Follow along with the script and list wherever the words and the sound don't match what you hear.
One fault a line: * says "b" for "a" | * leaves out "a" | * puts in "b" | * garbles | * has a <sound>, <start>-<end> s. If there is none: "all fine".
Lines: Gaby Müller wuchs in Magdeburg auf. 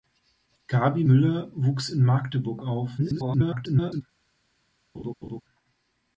* garbles
* has a laugh, 4.9-5.4 s